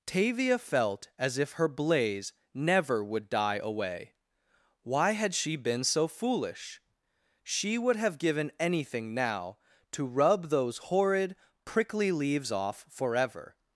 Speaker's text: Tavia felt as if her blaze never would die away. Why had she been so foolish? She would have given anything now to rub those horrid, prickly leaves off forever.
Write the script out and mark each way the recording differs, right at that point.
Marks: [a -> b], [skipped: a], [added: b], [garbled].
Tavia felt as if her blaze never would die away. Why had she been so foolish? She would have given anything now to rub those horrid, prickly leaves off forever.